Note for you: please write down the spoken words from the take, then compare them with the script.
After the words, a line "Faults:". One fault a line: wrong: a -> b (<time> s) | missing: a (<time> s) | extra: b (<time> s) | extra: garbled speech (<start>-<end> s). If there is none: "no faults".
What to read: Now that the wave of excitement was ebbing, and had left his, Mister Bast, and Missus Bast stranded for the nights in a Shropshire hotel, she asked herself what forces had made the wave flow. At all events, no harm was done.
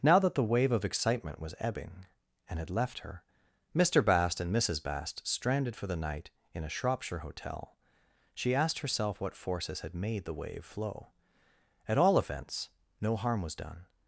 Now that the wave of excitement was ebbing, and had left her, Mister Bast, and Missus Bast stranded for the night in a Shropshire hotel, she asked herself what forces had made the wave flow. At all events, no harm was done.
Faults:
wrong: his -> her (3.0 s)
wrong: nights -> night (6.0 s)